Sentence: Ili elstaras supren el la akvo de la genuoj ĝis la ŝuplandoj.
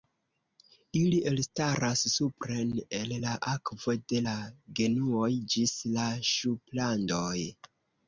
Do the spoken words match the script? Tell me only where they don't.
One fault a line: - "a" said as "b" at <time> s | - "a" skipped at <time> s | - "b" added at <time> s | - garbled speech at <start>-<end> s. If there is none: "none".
none